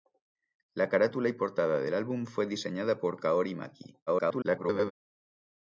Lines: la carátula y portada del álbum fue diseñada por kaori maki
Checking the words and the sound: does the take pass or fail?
fail